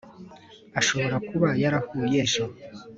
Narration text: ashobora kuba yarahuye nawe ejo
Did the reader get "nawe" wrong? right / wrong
wrong